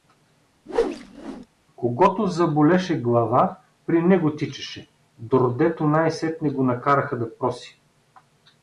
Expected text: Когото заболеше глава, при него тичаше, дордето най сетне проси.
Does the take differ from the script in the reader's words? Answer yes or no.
yes